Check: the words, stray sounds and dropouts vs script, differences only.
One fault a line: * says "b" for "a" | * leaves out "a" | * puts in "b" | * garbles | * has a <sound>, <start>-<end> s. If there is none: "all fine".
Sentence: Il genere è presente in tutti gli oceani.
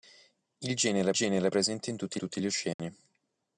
* puts in "genere"
* puts in "tutti"
* has a dropout, 2.7-2.8 s